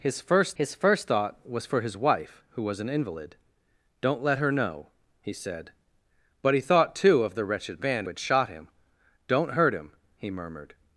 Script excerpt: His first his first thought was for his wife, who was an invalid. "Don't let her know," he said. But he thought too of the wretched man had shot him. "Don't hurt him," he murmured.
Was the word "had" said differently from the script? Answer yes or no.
no